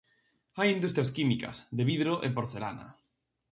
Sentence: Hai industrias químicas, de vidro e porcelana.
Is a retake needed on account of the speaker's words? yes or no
no